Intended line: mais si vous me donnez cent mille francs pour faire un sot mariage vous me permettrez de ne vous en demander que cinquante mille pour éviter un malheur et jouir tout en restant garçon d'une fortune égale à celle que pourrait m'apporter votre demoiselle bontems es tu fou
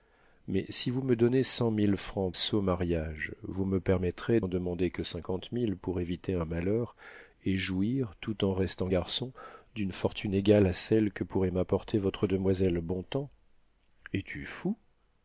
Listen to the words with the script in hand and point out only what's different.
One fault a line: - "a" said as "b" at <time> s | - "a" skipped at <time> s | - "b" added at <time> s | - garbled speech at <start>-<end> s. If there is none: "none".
- "pour faire un" skipped at 2.3 s
- "de ne vous" skipped at 4.4 s